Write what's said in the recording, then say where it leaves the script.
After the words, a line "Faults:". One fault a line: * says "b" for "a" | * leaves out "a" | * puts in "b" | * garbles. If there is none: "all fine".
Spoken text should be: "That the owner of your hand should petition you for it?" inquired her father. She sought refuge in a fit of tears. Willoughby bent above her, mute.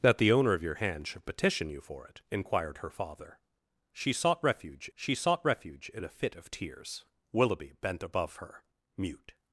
"That the owner of your hand should petition you for it?" inquired her father. She sought refuge she sought refuge in a fit of tears. Willoughby bent above her, mute.
Faults:
* puts in "she sought refuge"